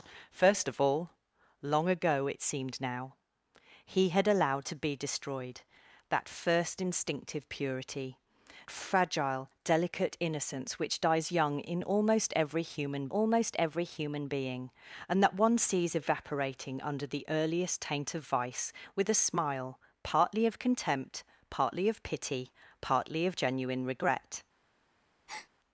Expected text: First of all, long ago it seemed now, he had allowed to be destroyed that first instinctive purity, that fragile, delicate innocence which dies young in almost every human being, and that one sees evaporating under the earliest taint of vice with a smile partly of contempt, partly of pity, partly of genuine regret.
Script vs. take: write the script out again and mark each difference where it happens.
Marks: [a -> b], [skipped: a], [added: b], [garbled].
First of all, long ago it seemed now, he had allowed to be destroyed that first instinctive purity, [skipped: that] fragile, delicate innocence which dies young in almost every human [added: almost every human] being, and that one sees evaporating under the earliest taint of vice with a smile partly of contempt, partly of pity, partly of genuine regret.